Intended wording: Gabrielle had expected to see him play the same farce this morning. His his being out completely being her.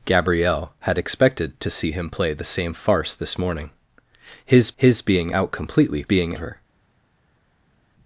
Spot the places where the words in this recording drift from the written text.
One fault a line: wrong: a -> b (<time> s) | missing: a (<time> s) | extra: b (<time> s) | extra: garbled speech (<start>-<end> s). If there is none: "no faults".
no faults